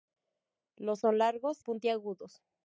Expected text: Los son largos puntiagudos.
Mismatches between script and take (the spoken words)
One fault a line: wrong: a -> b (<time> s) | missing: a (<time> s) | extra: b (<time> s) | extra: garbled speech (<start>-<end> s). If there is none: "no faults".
no faults